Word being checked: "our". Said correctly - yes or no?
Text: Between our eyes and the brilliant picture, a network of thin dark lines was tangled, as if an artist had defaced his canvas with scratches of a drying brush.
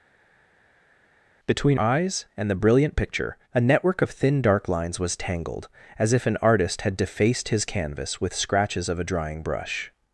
no